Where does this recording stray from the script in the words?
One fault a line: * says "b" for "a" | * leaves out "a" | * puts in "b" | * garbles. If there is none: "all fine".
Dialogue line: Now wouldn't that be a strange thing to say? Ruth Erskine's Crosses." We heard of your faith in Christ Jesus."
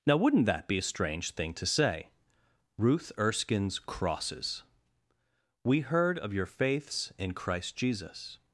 * says "faiths" for "faith"